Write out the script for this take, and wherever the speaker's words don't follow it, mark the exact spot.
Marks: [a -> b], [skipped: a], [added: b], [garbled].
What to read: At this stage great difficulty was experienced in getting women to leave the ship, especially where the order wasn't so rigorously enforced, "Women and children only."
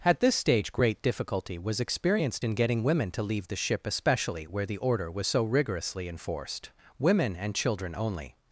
At this stage great difficulty was experienced in getting women to leave the ship, especially where the order [wasn't -> was] so rigorously enforced, "Women and children only."